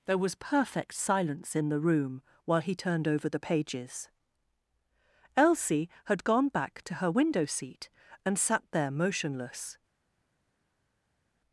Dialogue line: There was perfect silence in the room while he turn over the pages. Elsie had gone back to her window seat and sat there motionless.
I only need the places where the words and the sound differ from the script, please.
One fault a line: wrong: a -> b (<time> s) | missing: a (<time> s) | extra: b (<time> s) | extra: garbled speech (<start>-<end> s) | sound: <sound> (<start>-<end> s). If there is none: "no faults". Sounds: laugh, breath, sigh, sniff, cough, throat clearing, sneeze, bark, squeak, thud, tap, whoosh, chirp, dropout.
wrong: turn -> turned (2.8 s)